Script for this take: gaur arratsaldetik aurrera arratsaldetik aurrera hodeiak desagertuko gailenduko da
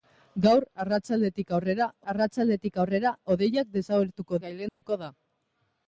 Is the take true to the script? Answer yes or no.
yes